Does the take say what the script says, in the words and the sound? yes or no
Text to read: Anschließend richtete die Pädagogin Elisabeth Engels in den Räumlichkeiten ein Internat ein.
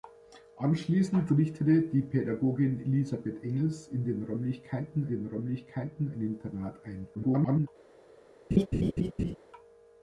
no